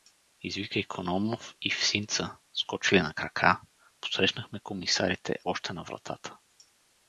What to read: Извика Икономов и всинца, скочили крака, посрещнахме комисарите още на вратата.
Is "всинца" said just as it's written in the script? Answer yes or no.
yes